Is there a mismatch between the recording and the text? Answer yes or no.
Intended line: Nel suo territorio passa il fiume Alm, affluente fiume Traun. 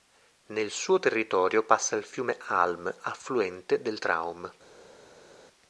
yes